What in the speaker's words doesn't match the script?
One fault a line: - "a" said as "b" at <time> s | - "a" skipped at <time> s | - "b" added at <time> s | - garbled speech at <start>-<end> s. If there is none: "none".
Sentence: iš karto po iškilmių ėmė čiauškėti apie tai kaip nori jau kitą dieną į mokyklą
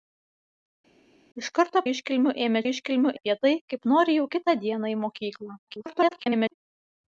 - "po" skipped at 1.8 s
- "čiauškėti" said as "iškilmių" at 2.7 s
- garbled speech at 5.7-6.5 s